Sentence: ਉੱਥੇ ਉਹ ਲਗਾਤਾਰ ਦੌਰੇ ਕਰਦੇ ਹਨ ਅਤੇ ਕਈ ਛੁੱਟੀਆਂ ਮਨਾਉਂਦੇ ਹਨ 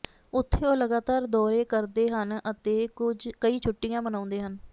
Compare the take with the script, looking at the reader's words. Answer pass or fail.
pass